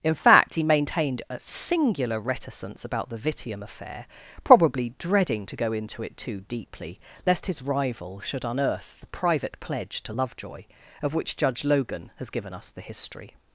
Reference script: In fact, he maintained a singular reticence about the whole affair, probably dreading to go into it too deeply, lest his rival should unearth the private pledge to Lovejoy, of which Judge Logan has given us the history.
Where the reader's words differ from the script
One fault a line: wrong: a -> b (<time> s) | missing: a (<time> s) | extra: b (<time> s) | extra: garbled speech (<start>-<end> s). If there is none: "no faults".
wrong: whole -> vitium (3.2 s)